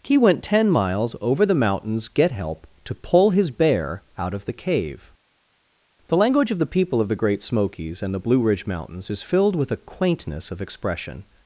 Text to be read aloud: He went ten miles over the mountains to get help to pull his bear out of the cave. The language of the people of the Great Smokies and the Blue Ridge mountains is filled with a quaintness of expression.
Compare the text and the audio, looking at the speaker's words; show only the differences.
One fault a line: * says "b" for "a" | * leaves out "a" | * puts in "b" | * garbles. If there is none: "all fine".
* leaves out "to"